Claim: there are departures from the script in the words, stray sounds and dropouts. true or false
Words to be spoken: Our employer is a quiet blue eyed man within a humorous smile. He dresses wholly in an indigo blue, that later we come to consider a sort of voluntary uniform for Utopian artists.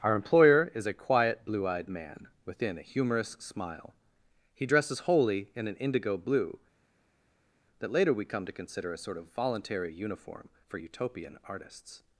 false